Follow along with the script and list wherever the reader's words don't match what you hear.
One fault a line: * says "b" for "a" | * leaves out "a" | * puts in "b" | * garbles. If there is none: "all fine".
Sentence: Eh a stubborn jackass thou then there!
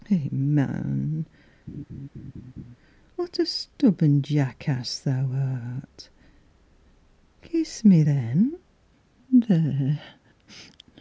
* puts in "man what"
* puts in "art Kiss me"